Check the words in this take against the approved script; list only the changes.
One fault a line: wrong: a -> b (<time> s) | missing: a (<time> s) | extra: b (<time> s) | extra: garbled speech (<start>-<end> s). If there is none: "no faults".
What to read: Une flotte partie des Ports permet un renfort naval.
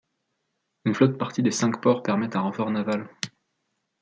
extra: Cinq (1.5 s)